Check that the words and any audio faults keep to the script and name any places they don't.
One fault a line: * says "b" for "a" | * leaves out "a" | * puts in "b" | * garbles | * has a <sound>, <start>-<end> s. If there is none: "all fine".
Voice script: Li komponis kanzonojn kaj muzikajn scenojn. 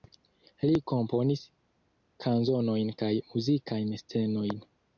all fine